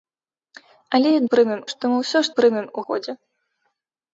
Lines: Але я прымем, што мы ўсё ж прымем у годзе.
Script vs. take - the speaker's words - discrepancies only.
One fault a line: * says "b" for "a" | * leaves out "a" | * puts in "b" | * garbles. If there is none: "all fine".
all fine